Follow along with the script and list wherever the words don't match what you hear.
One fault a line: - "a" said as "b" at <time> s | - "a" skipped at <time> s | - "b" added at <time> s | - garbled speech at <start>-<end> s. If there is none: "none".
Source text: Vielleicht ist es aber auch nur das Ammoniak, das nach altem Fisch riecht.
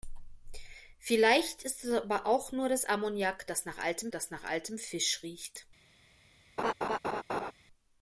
- "das nach altem" added at 4.1 s